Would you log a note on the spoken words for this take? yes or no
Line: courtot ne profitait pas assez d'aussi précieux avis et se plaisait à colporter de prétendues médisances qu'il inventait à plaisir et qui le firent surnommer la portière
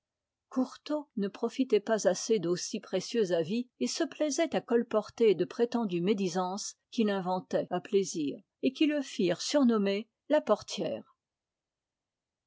no